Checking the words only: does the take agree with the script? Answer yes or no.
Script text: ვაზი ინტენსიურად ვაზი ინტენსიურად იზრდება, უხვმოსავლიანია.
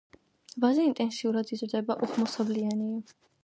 no